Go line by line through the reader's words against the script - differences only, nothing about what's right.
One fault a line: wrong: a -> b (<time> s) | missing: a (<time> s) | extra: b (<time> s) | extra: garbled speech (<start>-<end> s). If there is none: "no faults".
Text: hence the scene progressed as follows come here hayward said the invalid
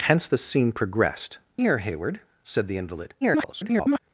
missing: as follows come (1.4 s)
extra: garbled speech (3.2-4.0 s)